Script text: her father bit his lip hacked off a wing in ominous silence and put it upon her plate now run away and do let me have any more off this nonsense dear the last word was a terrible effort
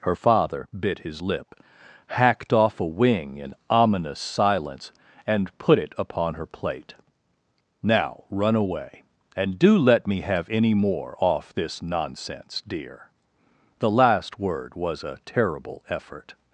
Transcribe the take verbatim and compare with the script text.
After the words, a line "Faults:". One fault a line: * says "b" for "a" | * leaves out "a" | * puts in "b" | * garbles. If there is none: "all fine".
her father bit his lip hacked off a wing in ominous silence and put it upon her plate now run away and do let me have any more off this nonsense dear the last word was a terrible effort
Faults:
all fine